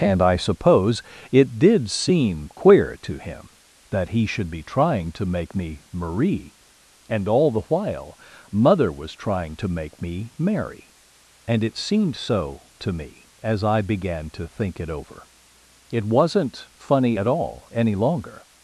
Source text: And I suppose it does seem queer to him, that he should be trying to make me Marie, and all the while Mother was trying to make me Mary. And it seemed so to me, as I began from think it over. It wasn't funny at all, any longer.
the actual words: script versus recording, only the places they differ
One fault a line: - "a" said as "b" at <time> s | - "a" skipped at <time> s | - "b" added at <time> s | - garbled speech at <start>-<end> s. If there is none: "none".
- "does" said as "did" at 1.6 s
- "from" said as "to" at 14.3 s